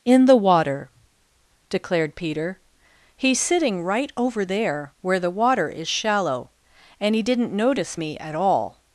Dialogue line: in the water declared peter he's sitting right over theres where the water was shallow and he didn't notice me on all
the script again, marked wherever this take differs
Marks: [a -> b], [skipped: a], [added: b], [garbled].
in the water declared peter he's sitting right over [theres -> there] where the water [was -> is] shallow and he didn't notice me [on -> at] all